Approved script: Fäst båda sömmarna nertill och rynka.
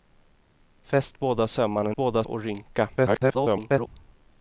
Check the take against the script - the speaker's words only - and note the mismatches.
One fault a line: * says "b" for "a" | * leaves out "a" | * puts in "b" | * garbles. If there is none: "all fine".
* says "båda" for "nertill"
* garbles